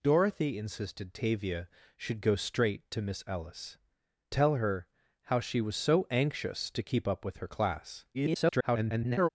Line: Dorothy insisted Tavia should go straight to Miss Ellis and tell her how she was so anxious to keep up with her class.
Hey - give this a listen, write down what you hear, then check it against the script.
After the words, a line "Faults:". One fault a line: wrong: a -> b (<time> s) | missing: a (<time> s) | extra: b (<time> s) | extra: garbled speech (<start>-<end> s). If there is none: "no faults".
Dorothy insisted Tavia should go straight to Miss Ellis tell her how she was so anxious to keep up with her class. [garbled]
Faults:
missing: and (3.8 s)
extra: garbled speech (8.1-9.3 s)